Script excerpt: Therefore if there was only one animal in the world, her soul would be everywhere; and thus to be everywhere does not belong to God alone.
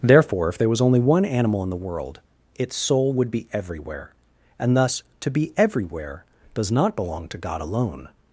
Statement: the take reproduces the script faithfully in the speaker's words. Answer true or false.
false